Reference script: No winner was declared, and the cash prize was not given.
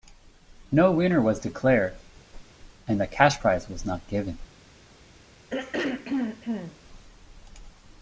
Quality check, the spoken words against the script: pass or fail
pass